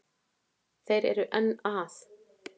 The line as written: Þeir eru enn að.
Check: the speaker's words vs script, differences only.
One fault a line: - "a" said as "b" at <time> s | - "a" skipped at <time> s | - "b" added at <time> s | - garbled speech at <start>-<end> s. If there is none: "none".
none